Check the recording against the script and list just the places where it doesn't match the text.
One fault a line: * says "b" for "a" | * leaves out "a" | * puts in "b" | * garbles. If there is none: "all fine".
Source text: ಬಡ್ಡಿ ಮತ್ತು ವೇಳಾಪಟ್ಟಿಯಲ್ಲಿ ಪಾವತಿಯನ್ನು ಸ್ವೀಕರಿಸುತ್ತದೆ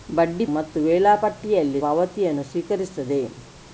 all fine